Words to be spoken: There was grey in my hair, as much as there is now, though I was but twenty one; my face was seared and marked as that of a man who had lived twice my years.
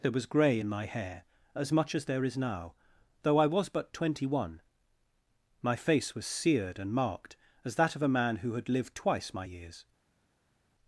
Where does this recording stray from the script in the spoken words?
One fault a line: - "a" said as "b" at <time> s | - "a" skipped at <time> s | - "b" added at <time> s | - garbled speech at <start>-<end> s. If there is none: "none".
none